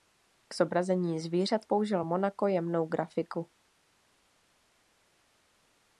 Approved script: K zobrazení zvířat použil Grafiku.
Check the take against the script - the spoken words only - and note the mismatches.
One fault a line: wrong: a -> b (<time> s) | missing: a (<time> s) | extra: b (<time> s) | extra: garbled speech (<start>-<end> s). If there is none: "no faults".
extra: Monaco jemnou (2.0 s)